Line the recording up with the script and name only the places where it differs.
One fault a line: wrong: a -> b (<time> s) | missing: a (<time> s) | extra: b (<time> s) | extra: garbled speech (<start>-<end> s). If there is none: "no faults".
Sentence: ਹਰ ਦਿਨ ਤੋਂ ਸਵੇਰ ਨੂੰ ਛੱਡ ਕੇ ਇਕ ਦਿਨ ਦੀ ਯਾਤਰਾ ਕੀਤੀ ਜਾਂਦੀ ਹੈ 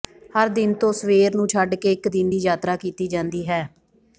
no faults